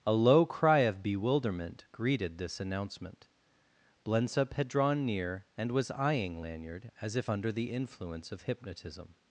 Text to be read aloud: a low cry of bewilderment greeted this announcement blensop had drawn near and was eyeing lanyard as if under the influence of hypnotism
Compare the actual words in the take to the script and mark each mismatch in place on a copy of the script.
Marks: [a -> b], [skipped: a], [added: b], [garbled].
a low cry of bewilderment greeted this announcement blensop had drawn near and was eyeing lanyard as if under the influence of hypnotism